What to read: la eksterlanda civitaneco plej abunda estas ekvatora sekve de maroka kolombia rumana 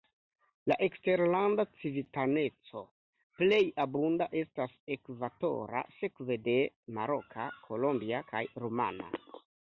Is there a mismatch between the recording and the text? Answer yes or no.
yes